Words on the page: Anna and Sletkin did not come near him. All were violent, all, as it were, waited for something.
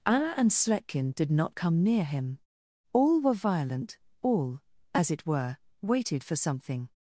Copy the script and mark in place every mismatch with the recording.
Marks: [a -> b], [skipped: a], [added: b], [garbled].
Anna and Sletkin did not come near him. All were violent, all, as it were, waited for something.